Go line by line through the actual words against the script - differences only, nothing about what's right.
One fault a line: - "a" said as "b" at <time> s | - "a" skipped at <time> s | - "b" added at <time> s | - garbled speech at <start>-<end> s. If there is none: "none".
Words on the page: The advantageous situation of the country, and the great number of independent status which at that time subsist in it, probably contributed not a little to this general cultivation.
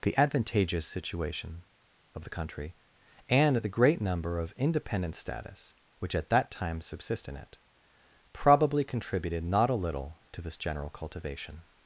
none